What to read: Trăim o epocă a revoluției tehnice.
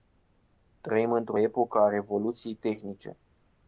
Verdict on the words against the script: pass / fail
fail